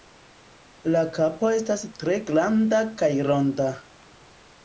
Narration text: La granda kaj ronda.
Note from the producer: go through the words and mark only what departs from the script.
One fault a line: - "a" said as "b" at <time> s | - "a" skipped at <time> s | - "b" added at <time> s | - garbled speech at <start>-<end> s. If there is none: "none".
- "kapo estas tre" added at 1.2 s